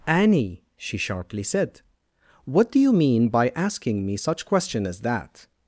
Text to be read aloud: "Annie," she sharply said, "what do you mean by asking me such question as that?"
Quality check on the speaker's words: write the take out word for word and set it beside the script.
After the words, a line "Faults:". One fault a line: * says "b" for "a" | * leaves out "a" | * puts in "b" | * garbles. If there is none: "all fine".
"Annie," she sharply said, "what do you mean by asking me such question as that?"
Faults:
all fine